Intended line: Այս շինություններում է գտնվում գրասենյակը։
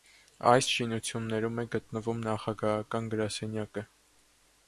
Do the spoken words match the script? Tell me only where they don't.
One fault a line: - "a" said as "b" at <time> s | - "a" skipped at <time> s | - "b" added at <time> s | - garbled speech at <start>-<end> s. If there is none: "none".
- "նախագահական" added at 2.3 s